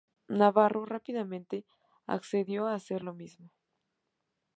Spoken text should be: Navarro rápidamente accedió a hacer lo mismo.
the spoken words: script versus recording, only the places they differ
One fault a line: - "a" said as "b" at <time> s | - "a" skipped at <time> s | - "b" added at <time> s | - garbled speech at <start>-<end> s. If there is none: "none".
none